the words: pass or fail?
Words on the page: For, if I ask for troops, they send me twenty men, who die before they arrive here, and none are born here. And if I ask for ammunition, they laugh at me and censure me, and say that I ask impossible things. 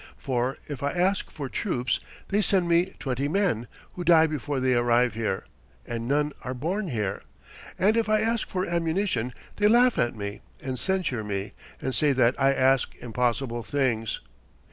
pass